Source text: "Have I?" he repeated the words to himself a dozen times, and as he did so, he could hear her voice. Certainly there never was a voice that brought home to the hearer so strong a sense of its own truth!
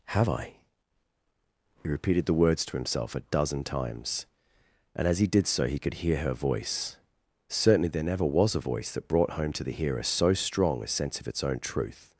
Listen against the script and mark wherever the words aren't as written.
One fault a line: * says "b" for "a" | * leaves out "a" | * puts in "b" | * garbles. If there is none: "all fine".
all fine